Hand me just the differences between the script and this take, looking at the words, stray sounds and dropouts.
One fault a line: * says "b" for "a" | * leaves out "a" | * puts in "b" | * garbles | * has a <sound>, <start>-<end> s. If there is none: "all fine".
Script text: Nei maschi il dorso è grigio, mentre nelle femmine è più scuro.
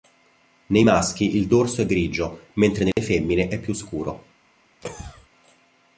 * has a dropout, 2.9-3.0 s
* has a cough, 4.8-5.3 s